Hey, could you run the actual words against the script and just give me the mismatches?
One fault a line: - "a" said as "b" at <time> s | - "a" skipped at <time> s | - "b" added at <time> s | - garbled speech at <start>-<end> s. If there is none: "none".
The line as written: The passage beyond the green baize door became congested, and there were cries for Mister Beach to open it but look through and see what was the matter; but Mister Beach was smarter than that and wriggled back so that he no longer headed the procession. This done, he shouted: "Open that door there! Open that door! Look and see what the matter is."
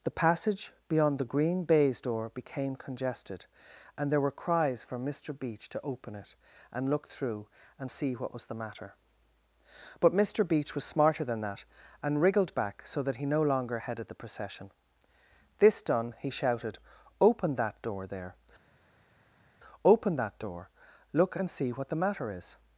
- "but" said as "and" at 6.7 s